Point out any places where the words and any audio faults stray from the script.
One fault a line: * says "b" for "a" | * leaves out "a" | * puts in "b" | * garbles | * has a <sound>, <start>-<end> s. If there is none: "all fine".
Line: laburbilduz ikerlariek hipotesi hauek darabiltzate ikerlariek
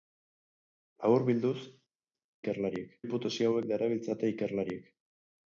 all fine